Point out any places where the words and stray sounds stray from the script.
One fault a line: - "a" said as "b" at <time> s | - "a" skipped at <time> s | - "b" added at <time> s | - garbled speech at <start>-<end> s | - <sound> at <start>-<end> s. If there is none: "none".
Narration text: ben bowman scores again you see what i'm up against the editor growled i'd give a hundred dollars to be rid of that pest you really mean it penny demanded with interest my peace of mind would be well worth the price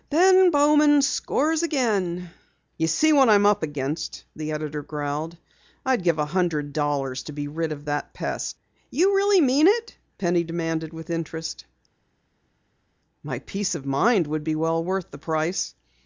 none